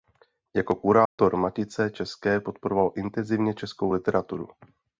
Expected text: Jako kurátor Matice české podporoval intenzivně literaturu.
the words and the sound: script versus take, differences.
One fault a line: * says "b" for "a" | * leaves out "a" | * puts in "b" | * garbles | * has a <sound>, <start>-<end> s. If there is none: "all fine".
* has a dropout, 1.1-1.2 s
* puts in "českou"